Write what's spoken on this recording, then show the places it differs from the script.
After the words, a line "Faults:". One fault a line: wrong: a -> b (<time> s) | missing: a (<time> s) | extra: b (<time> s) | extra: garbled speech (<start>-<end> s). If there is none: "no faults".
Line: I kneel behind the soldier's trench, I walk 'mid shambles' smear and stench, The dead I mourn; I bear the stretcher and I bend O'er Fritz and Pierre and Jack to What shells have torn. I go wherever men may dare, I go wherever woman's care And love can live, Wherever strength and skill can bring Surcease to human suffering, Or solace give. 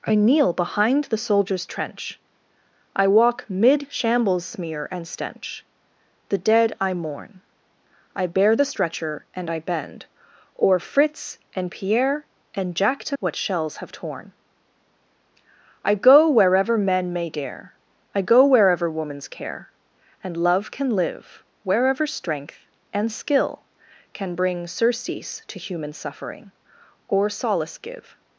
I kneel behind the soldier's trench, I walk 'mid shambles' smear and stench, The dead I mourn; I bear the stretcher and I bend O'er Fritz and Pierre and Jack to What shells have torn. I go wherever men may dare, I go wherever woman's care And love can live, Wherever strength and skill can bring Surcease to human suffering, Or solace give.
Faults:
no faults